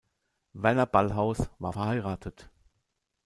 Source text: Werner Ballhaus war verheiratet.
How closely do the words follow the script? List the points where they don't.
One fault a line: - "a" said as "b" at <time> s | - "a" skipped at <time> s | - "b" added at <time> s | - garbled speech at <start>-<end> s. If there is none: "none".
none